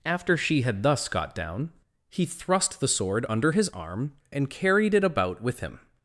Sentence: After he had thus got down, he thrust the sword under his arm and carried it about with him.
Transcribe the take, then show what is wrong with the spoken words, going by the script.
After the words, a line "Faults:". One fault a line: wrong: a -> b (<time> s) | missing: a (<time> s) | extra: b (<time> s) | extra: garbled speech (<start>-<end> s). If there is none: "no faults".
After she had thus got down, he thrust the sword under his arm and carried it about with him.
Faults:
wrong: he -> she (0.3 s)